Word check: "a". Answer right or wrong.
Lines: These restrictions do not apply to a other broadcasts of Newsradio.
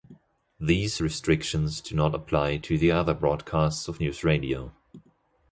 wrong